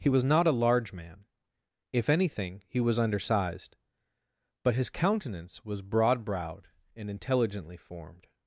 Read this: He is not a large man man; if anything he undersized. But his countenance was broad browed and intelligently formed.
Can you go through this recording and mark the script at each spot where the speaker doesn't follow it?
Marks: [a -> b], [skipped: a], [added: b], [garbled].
He [is -> was] not a large man [skipped: man;] if anything he [added: was] undersized. But his countenance was broad browed and intelligently formed.